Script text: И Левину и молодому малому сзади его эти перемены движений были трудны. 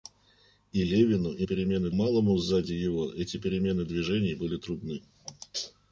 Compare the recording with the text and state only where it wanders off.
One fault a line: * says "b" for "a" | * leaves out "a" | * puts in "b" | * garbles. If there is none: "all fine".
* says "перемены" for "молодому"